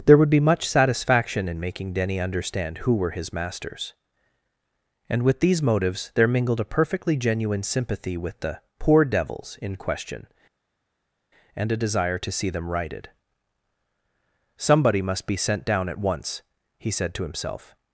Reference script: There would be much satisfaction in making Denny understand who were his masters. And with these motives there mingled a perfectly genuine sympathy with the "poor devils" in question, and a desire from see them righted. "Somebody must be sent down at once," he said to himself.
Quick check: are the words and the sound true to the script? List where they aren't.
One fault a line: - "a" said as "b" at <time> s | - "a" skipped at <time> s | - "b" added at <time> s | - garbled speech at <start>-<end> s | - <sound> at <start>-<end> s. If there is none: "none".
- "from" said as "to" at 12.2 s